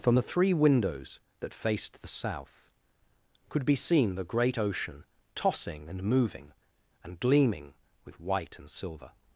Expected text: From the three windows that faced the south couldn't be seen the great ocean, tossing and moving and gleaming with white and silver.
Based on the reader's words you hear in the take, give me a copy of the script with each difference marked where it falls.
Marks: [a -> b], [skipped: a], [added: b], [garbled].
From the three windows that faced the south [couldn't -> could] be seen the great ocean, tossing and moving and gleaming with white and silver.